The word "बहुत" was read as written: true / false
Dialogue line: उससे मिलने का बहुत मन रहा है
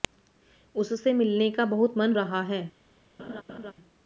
true